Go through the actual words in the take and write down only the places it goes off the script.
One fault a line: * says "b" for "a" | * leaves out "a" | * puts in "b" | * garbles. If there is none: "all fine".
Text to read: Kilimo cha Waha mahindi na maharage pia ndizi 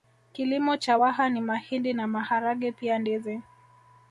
* puts in "ni"